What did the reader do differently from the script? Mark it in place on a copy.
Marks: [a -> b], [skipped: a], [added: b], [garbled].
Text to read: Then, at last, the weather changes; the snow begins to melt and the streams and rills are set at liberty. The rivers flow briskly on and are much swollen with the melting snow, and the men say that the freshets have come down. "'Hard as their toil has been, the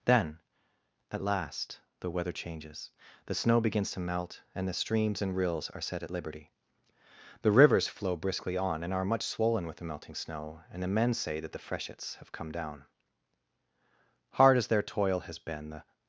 Then, at last, the weather changes; the snow begins to melt and the streams and rills are set at liberty. The rivers flow briskly on and are much swollen with the melting snow, and the men say that the freshets have come down. "'Hard as their toil has been, the